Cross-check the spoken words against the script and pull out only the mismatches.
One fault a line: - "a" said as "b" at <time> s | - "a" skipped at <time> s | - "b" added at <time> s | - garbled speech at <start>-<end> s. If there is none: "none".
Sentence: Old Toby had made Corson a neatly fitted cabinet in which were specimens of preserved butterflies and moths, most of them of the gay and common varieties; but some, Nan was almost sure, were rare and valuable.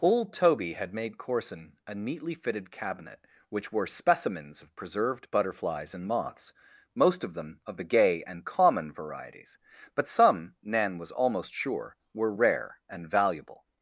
- "in" skipped at 3.2 s